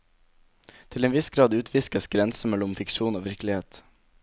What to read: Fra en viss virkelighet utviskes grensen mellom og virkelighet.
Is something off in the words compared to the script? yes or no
yes